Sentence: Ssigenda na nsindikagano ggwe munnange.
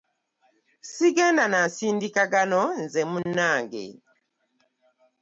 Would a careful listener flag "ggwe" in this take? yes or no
yes